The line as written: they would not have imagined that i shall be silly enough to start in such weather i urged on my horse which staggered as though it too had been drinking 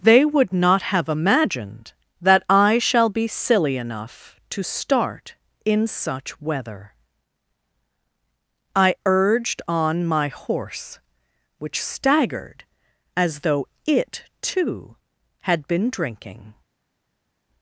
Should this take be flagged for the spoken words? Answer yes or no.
no